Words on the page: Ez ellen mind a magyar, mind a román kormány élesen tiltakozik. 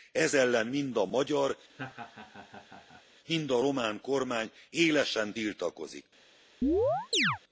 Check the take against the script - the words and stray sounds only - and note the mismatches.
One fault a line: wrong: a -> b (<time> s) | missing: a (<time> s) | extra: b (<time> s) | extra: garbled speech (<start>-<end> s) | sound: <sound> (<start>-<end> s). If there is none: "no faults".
sound: laugh (1.7-3.0 s)
sound: chirp (6.6-7.4 s)